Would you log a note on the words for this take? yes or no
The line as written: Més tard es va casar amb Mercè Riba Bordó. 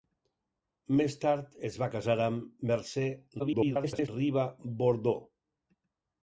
yes